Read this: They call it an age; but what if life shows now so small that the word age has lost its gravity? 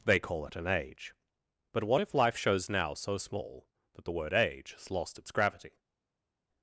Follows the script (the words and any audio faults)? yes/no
yes